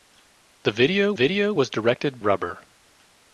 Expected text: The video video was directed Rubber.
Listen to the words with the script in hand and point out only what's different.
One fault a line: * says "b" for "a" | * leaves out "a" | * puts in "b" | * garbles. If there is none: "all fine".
all fine